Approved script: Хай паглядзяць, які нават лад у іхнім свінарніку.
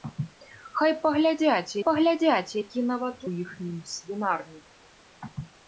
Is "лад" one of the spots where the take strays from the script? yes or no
yes